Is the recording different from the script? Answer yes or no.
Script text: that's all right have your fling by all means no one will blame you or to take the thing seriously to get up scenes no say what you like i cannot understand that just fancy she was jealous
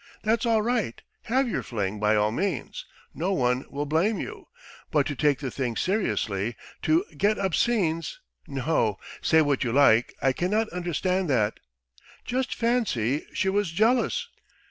yes